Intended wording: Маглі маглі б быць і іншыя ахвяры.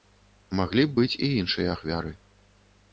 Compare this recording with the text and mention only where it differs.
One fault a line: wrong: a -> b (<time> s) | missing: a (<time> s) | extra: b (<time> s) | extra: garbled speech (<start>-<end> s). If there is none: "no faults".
missing: маглі (0.9 s)